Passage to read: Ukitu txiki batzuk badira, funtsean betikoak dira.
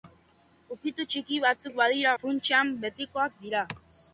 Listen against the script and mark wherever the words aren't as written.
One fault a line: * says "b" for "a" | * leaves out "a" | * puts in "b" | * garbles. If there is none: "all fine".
all fine